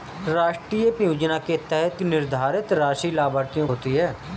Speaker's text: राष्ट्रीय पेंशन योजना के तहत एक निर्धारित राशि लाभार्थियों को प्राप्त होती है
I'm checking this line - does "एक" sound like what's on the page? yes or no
no